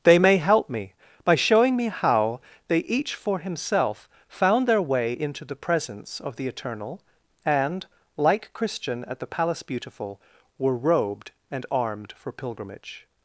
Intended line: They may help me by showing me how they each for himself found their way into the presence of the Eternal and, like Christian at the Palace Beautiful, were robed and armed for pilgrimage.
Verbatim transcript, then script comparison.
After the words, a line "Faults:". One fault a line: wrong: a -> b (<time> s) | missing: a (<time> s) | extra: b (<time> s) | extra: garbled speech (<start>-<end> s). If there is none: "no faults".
They may help me by showing me how they each for himself found their way into the presence of the Eternal and, like Christian at the Palace Beautiful, were robed and armed for pilgrimage.
Faults:
no faults